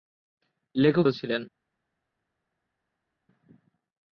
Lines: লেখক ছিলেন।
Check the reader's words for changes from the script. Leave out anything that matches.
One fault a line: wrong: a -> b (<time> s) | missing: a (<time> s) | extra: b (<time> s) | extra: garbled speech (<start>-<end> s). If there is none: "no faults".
no faults